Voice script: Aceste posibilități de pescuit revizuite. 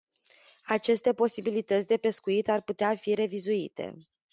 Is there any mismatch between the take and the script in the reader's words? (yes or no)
yes